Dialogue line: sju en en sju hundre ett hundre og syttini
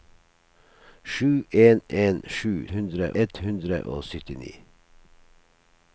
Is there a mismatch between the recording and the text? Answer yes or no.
no